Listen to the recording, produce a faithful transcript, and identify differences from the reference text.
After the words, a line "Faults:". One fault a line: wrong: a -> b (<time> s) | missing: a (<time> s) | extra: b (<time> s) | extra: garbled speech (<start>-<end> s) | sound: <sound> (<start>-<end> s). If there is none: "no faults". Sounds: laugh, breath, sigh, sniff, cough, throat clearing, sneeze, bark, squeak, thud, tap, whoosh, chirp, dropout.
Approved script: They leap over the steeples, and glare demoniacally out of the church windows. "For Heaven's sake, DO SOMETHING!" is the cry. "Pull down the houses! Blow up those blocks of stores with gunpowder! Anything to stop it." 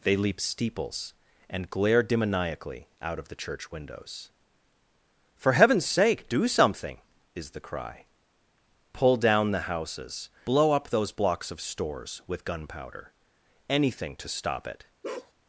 They leap steeples, and glare demoniacally out of the church windows. "For Heaven's sake, DO SOMETHING!" is the cry. "Pull down the houses! Blow up those blocks of stores with gunpowder! Anything to stop it."
Faults:
missing: over the (0.4 s)
sound: bark (15.0-15.3 s)